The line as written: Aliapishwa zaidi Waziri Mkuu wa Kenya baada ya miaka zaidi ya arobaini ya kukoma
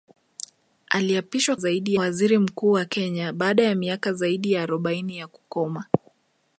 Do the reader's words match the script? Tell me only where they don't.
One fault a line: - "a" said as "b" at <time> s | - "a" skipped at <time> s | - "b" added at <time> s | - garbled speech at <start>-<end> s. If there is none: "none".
none